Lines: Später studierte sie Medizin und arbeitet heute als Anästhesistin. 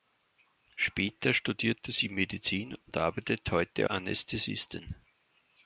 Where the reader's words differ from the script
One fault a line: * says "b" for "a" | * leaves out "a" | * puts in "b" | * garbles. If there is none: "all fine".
* leaves out "als"